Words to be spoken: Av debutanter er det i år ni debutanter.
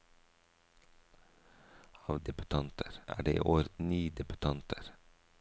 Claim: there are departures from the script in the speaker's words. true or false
false